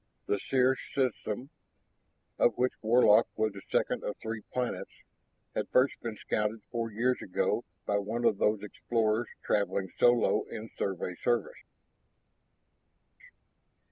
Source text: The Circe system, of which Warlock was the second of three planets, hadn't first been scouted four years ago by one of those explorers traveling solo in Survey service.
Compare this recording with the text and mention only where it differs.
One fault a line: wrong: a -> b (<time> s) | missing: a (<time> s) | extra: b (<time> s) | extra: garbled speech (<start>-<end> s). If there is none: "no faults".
wrong: hadn't -> had (5.6 s)